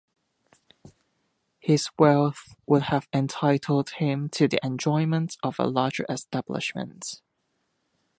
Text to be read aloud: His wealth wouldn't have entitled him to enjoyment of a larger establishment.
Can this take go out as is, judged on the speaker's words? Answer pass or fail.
fail